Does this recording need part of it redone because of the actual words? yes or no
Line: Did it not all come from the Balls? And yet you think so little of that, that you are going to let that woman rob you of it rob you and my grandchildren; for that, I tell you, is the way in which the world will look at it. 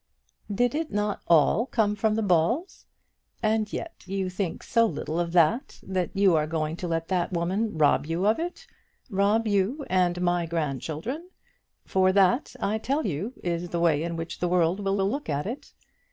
yes